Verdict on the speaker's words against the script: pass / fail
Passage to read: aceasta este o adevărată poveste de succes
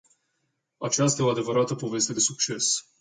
fail